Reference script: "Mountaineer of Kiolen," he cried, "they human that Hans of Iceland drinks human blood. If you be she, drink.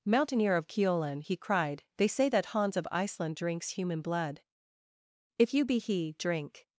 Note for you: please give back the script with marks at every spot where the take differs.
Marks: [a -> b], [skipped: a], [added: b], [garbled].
"Mountaineer of Kiolen," he cried, "they [human -> say] that Hans of Iceland drinks human blood. If you be [she, -> he] drink.